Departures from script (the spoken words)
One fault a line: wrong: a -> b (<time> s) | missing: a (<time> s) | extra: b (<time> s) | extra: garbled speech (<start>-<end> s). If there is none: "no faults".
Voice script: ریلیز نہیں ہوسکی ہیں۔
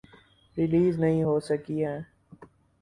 no faults